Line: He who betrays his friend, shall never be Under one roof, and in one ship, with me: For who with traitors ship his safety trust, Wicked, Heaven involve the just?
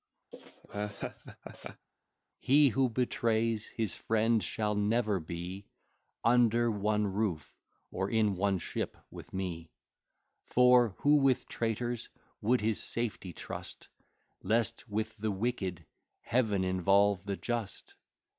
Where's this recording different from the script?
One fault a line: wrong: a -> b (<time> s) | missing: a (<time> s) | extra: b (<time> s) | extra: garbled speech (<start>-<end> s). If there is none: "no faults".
wrong: and -> or (7.9 s)
wrong: ship -> would (12.4 s)
extra: Lest with the (14.4 s)